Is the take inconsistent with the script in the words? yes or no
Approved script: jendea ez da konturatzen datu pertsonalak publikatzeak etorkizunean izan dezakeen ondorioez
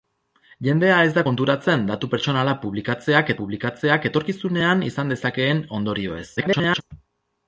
yes